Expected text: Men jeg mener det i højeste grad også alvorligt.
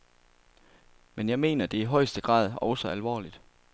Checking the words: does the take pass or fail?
pass